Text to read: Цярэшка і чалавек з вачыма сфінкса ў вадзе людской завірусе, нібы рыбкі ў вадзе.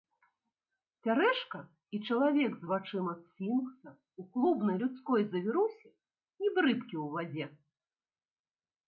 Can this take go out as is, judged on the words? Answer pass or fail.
fail